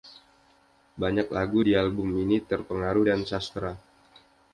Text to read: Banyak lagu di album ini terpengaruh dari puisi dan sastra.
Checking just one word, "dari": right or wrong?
wrong